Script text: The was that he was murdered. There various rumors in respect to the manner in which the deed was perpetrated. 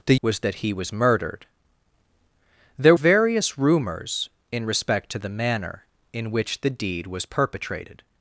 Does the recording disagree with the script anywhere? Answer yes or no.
no